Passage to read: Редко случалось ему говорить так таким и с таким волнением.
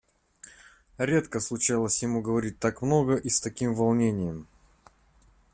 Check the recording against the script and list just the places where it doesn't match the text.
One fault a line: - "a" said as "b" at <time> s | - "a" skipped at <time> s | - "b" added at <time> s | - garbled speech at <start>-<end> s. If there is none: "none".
- "таким" said as "много" at 2.8 s